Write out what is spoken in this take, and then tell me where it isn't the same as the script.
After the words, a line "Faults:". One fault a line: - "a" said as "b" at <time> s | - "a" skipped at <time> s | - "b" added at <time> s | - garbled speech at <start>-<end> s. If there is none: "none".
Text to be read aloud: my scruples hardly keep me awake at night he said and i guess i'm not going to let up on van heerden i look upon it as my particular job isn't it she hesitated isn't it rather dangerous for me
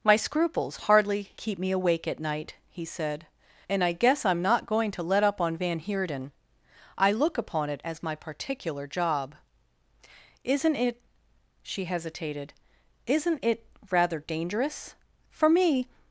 my scruples hardly keep me awake at night he said and i guess i'm not going to let up on van heerden i look upon it as my particular job isn't it she hesitated isn't it rather dangerous for me
Faults:
none